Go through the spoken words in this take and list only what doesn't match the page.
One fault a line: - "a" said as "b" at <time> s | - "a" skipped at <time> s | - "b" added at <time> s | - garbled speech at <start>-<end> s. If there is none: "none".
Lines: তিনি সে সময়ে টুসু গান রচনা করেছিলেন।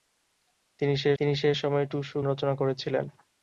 - "তিনি সে" added at 1.2 s
- "গান" skipped at 2.2 s